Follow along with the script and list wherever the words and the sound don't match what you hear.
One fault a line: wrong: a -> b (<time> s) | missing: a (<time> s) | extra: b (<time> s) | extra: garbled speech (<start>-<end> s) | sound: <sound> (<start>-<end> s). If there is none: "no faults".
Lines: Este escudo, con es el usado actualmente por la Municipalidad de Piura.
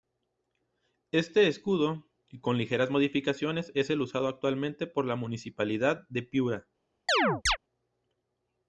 extra: ligeras modificaciones (2.6 s)
sound: chirp (7.1-7.6 s)